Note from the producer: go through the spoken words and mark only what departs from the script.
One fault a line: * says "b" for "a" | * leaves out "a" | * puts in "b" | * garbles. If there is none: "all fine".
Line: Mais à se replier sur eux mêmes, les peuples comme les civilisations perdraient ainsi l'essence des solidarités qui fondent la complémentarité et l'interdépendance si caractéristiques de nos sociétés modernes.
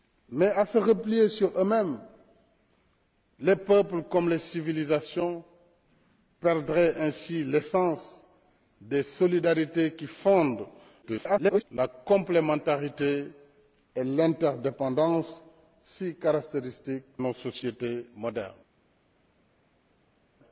* garbles
* leaves out "de"